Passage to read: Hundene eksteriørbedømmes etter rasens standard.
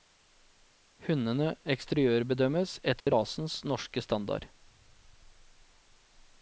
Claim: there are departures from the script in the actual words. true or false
true